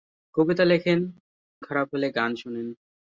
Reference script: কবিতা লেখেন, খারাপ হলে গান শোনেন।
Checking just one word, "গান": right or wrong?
right